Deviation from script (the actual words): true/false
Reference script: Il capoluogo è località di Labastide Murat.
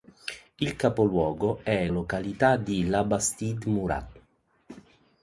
false